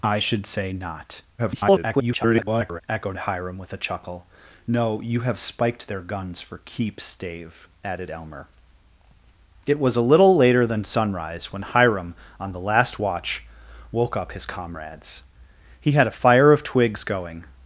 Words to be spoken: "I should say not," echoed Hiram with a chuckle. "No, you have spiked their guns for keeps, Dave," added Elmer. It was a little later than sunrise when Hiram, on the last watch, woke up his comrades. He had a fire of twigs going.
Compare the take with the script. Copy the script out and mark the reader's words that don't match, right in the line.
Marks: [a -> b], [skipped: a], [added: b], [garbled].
"I should say not," [garbled] echoed Hiram with a chuckle. "No, you have spiked their guns for keeps, Dave," added Elmer. It was a little later than sunrise when Hiram, on the last watch, woke up his comrades. He had a fire of twigs going.